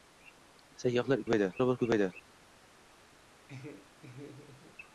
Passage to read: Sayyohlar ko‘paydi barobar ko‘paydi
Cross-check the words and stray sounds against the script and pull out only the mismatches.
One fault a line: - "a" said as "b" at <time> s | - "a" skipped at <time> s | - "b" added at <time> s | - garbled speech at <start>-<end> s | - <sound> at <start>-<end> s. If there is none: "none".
- laugh at 3.5-4.8 s